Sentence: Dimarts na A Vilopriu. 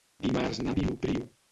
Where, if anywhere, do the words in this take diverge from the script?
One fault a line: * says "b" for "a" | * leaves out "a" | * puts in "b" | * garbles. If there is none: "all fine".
all fine